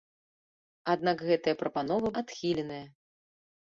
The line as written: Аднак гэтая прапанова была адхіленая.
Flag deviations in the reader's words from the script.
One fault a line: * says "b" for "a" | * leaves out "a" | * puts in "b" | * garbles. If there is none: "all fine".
* leaves out "была"